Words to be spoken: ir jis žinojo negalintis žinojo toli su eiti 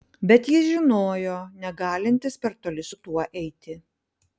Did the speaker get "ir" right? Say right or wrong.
wrong